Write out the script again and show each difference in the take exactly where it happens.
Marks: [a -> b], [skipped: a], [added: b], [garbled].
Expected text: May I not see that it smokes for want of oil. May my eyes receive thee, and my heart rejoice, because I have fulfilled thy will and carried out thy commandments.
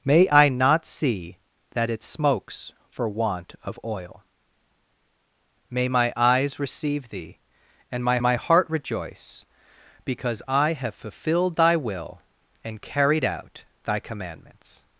May I not see that it smokes for want of oil. May my eyes receive thee, and my [added: my] heart rejoice, because I have fulfilled thy will and carried out thy commandments.